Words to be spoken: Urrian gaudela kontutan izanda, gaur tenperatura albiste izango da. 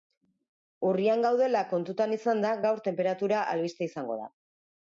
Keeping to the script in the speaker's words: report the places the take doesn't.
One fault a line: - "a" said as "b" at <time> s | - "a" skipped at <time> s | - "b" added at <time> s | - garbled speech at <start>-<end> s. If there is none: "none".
none